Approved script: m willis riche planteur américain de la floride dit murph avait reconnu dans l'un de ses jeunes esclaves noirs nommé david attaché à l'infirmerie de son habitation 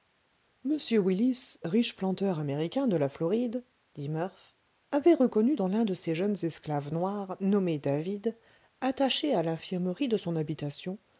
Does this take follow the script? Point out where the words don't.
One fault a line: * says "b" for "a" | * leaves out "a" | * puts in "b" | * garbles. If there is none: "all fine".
all fine